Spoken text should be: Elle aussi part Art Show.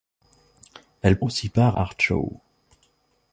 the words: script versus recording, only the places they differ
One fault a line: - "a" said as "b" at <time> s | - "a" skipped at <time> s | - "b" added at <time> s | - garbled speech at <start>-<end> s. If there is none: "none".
none